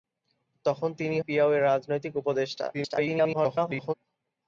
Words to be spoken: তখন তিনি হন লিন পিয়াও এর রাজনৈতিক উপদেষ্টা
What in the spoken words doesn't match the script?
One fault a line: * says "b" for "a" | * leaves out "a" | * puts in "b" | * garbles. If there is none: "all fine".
* leaves out "হন লিন"
* garbles